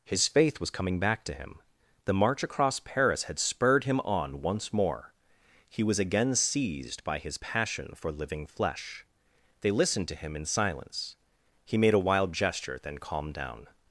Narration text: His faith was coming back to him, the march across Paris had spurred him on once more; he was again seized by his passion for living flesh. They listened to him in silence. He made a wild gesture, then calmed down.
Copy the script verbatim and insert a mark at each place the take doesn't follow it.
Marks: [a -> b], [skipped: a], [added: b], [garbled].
His faith was coming back to him, the march across Paris had spurred him on once more; he was again seized by his passion for living flesh. They listened to him in silence. He made a wild gesture, then calmed down.